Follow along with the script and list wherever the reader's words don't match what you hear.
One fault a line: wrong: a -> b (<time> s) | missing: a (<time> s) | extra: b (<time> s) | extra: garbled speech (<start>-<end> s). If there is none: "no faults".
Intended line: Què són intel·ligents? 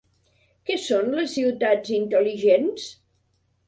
extra: les ciutats (1.2 s)